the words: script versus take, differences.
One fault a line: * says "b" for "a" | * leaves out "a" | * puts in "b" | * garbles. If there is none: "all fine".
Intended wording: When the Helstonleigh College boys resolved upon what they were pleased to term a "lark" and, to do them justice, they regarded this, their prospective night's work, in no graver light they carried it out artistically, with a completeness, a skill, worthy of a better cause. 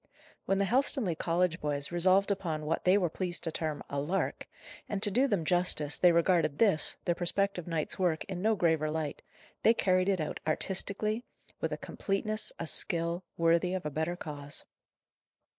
all fine